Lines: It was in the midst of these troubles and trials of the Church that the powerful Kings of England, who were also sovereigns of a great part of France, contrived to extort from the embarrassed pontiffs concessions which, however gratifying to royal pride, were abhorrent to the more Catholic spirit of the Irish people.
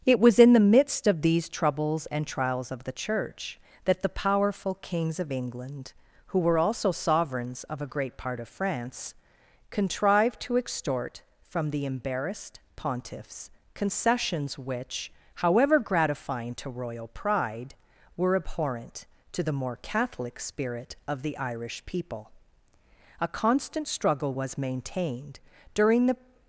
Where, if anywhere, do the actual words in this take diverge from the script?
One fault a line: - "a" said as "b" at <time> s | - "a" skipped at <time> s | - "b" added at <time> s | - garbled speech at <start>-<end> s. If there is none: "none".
- "A constant struggle was maintained during the" added at 23.2 s